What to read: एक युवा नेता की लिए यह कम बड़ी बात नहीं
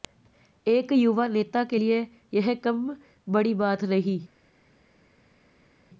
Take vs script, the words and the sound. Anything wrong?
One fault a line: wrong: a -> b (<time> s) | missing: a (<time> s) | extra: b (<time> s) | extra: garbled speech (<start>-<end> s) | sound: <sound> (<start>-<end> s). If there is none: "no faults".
wrong: की -> के (1.6 s)